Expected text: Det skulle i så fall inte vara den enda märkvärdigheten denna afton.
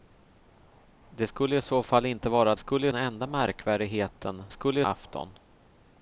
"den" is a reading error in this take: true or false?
true